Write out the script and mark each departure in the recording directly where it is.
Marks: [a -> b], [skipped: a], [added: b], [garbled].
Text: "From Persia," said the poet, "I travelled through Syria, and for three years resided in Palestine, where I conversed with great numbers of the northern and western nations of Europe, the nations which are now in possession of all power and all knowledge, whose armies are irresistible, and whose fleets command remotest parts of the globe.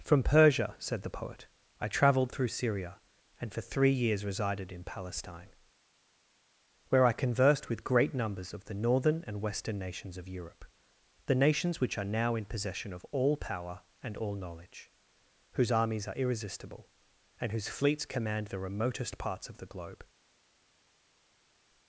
"From Persia," said the poet, "I travelled through Syria, and for three years resided in Palestine, where I conversed with great numbers of the northern and western nations of Europe, the nations which are now in possession of all power and all knowledge, whose armies are irresistible, and whose fleets command [added: the] remotest parts of the globe.